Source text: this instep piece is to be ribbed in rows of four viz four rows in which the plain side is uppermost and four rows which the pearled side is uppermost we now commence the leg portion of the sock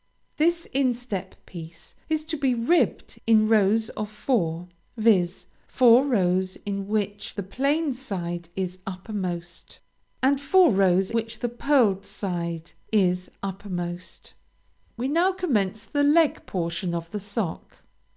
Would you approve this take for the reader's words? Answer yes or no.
yes